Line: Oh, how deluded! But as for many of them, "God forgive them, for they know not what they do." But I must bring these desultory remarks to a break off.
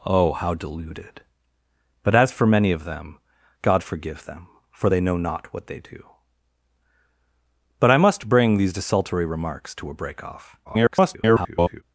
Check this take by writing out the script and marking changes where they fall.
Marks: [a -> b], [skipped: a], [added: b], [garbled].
Oh, how deluded! But as for many of them, "God forgive them, for they know not what they do." But I must bring these desultory remarks to a break off. [garbled]